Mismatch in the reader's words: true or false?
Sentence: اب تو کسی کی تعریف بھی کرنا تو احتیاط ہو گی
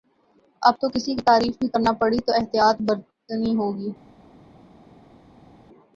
true